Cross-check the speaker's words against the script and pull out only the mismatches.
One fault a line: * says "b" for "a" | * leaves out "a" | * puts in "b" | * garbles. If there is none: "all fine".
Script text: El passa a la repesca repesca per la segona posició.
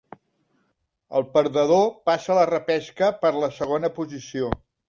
* puts in "perdedor"
* leaves out "repesca"